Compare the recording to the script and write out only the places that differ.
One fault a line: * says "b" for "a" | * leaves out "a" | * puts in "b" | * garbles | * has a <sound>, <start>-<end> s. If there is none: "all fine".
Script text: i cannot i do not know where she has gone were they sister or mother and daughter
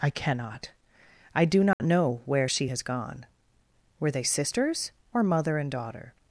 * has a dropout, 1.7-1.8 s
* says "sisters" for "sister"